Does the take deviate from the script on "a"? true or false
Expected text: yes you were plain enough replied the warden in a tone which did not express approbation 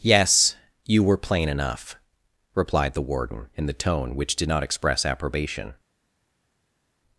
true